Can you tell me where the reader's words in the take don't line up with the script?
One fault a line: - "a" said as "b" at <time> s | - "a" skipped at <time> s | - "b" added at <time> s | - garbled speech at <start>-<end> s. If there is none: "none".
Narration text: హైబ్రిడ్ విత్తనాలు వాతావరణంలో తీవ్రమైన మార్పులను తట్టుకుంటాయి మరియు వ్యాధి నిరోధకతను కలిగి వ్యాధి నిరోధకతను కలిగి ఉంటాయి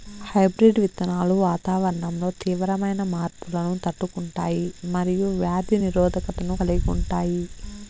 - "వ్యాధి నిరోధకతను కలిగి" skipped at 6.9 s